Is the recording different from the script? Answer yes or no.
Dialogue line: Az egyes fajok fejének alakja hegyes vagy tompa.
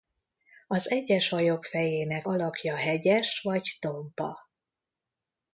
no